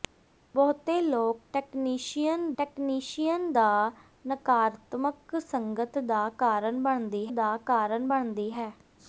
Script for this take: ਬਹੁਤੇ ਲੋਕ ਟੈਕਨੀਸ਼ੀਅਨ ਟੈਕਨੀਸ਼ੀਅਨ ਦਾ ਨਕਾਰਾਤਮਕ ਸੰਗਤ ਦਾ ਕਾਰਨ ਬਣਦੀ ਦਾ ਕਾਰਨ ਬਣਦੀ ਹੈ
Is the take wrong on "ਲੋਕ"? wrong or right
right